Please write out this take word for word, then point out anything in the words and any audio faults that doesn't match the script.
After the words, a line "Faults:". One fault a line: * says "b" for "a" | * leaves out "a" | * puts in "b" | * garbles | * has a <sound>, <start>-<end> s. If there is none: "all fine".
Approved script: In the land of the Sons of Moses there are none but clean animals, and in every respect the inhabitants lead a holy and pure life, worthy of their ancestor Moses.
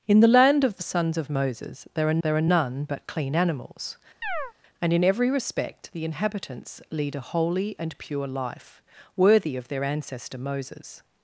In the land of the Sons of Moses there are there are none but clean animals, and in every respect the inhabitants lead a holy and pure life, worthy of their ancestor Moses.
Faults:
* puts in "there are"
* has a chirp, 4.2-4.5 s